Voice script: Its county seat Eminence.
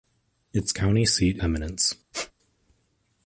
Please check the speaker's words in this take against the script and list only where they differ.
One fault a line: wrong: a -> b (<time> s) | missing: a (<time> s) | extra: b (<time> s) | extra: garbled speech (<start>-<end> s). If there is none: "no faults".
no faults